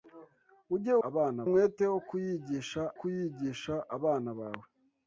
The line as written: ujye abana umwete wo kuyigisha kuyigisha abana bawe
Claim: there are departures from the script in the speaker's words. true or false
false